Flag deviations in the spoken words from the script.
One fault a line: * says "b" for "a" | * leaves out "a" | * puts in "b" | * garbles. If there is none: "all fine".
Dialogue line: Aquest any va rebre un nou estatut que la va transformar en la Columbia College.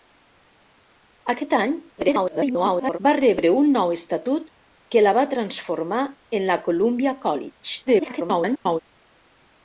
* garbles
* garbles